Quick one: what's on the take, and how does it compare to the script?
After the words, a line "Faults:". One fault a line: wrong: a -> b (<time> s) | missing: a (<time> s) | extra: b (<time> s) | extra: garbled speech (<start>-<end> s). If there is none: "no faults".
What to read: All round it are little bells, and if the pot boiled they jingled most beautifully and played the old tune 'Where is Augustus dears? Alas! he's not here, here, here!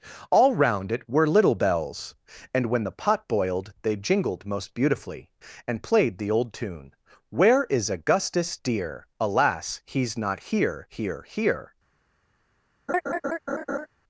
All round it were little bells, and when the pot boiled they jingled most beautifully and played the old tune 'Where is Augustus dear? Alas! he's not here, here, here!
Faults:
wrong: are -> were (1.1 s)
wrong: if -> when (2.7 s)
wrong: dears -> dear (8.6 s)